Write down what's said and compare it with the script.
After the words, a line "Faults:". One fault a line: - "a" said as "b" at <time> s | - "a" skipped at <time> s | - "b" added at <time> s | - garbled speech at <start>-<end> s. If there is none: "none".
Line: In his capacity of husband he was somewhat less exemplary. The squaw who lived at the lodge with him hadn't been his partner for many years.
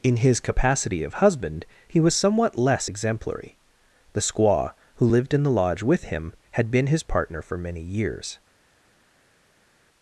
In his capacity of husband he was somewhat less exemplary. The squaw who lived in the lodge with him had been his partner for many years.
Faults:
- "at" said as "in" at 5.3 s
- "hadn't" said as "had" at 6.5 s